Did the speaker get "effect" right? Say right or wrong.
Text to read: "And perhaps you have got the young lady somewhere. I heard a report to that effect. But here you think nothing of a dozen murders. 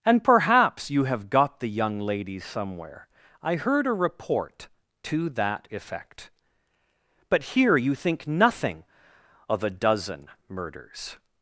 right